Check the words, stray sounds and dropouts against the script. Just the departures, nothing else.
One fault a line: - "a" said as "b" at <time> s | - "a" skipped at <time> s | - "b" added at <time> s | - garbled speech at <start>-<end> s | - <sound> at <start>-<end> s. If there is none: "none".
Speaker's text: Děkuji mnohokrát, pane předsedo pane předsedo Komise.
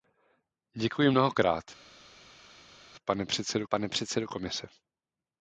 none